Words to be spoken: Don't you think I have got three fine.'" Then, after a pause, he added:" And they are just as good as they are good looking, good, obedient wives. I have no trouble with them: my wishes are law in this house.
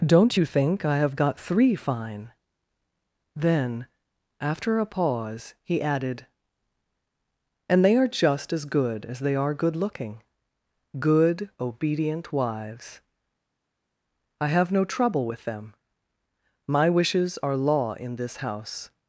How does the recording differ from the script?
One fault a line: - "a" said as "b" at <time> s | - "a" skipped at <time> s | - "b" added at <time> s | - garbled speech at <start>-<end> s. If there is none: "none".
none